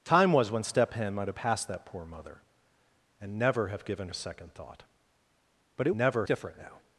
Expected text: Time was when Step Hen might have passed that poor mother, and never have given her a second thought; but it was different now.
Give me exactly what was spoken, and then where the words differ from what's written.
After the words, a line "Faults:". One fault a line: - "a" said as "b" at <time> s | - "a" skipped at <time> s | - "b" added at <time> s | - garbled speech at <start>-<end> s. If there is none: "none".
Time was when Step Hen might have passed that poor mother, and never have given a second thought; but it never different now.
Faults:
- "her" skipped at 4.1 s
- "was" said as "never" at 6.0 s